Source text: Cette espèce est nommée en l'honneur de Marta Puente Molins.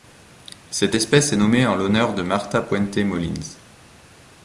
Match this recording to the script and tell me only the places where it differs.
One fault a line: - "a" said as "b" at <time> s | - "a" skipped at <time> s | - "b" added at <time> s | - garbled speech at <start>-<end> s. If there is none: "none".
none